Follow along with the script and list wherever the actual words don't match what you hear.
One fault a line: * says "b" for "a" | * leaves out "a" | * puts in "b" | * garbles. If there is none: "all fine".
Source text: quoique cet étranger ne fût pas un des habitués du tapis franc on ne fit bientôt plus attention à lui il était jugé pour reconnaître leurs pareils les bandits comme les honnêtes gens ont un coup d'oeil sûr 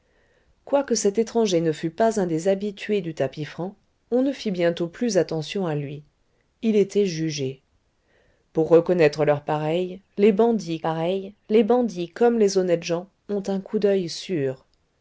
* puts in "pareils les bandits"